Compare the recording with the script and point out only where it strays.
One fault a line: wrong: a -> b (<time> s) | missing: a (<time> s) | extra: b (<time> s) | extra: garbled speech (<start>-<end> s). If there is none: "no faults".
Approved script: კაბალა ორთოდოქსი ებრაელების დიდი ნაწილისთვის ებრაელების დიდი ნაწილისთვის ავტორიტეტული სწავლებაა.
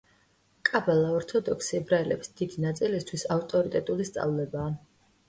missing: ებრაელების დიდი ნაწილისთვის (3.3 s)